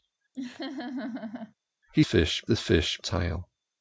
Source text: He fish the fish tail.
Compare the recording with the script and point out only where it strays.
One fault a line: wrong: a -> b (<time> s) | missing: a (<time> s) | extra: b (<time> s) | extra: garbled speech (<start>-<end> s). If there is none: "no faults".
no faults